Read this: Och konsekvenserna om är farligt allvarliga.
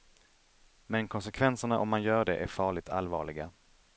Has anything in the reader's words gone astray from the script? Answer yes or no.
yes